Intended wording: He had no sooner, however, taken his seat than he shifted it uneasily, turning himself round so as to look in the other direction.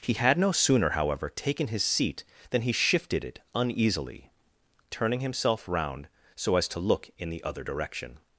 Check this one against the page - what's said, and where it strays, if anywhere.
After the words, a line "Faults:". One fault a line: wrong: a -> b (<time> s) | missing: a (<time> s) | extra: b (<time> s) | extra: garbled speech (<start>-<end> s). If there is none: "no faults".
He had no sooner, however, taken his seat than he shifted it uneasily, turning himself round so as to look in the other direction.
Faults:
no faults